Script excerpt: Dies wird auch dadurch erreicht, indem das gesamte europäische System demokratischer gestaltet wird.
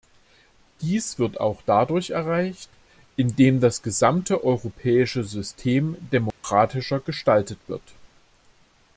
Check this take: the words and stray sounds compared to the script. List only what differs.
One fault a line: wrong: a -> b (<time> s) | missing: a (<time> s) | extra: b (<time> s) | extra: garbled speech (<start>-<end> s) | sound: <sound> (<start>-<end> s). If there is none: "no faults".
sound: dropout (6.3-6.4 s)